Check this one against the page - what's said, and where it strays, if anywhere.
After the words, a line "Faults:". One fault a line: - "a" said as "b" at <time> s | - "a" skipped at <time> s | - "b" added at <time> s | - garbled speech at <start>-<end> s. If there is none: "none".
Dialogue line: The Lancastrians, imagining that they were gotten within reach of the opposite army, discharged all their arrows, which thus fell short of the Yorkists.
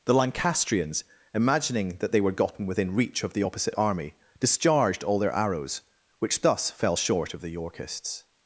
The Lancastrians, imagining that they were gotten within reach of the opposite army, discharged all their arrows, which thus fell short of the Yorkists.
Faults:
none